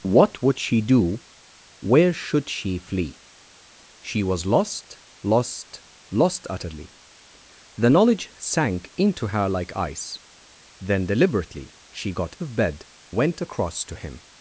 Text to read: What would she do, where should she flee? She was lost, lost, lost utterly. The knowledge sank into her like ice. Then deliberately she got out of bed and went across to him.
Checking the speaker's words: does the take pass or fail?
fail